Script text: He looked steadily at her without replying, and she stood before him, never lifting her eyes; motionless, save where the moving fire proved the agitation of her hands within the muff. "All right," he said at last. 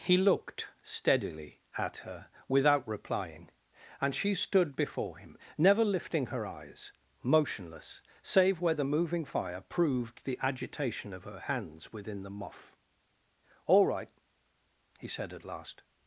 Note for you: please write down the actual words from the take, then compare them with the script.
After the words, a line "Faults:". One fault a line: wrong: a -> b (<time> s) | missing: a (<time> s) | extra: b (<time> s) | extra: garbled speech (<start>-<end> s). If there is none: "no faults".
He looked steadily at her without replying, and she stood before him, never lifting her eyes; motionless, save where the moving fire proved the agitation of her hands within the muff. "All right," he said at last.
Faults:
no faults